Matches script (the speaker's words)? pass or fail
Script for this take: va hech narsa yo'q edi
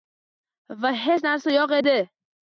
pass